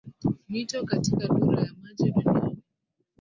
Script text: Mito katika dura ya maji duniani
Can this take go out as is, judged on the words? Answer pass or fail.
pass